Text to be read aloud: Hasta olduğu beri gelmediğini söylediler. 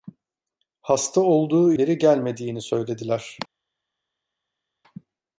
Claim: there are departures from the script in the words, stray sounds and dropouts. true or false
false